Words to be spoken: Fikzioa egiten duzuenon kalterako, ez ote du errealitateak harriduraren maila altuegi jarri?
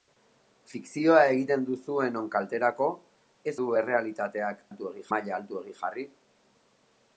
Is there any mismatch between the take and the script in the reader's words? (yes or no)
yes